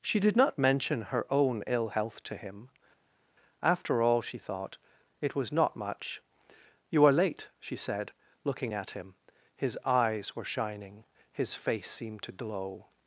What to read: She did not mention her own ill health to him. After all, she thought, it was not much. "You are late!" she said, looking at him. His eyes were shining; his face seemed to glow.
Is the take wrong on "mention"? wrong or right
right